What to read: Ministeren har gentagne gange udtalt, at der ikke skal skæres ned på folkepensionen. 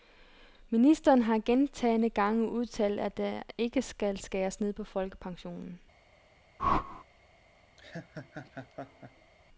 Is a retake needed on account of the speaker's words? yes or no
no